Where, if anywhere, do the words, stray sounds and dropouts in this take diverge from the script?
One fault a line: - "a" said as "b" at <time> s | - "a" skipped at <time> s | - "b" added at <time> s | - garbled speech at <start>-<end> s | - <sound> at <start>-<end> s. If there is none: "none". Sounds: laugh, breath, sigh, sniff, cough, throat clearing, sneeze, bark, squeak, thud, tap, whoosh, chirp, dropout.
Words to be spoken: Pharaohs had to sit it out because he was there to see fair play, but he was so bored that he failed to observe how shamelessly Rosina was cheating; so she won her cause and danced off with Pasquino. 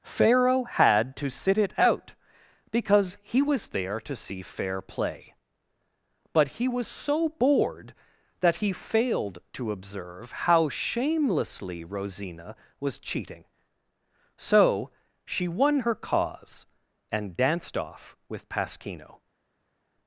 - "Pharaohs" said as "Pharaoh" at 0.0 s